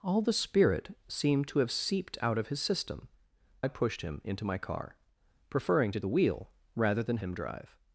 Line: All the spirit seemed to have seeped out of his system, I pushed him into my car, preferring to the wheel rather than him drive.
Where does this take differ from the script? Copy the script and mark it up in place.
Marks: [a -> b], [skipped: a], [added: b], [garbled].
All the spirit seemed to have seeped out of his system, I pushed him into my car, preferring to the wheel rather than him drive.